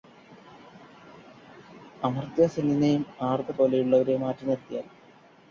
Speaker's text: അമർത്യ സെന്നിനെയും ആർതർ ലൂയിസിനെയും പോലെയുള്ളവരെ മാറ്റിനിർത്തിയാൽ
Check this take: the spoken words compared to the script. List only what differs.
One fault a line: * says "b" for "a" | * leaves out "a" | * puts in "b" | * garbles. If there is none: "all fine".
* leaves out "ലൂയിസിനെയും"